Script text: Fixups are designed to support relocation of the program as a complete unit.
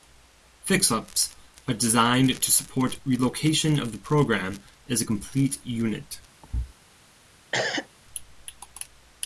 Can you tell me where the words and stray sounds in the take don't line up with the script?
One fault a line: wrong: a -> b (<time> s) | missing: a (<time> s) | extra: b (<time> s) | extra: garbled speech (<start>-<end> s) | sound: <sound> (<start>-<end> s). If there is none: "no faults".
sound: thud (6.4-6.7 s)
sound: cough (7.5-7.9 s)